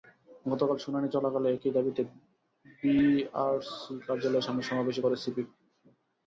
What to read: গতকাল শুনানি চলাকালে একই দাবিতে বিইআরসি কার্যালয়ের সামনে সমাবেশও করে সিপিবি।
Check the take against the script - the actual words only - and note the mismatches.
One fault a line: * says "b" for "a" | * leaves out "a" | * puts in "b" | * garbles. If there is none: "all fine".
all fine